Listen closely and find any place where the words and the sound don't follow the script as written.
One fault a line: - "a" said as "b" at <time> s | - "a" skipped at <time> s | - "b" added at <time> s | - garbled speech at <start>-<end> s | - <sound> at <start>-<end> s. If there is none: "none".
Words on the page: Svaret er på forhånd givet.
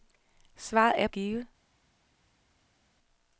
- "på forhånd" skipped at 1.1 s